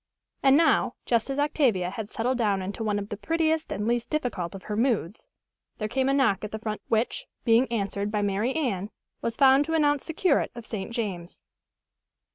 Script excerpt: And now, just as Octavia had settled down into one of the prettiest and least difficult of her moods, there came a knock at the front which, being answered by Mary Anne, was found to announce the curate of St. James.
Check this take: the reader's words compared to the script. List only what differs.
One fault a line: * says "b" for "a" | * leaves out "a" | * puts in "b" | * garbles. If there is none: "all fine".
all fine